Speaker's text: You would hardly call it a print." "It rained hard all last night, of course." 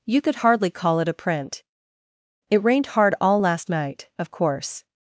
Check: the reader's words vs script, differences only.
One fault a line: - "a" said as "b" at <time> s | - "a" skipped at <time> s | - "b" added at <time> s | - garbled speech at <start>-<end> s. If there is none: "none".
- "would" said as "could" at 0.2 s